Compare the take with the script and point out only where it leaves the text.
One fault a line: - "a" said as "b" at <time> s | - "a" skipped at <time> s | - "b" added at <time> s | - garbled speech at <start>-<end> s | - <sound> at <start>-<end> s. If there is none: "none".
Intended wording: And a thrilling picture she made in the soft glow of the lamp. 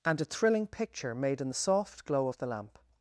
- "she" skipped at 1.1 s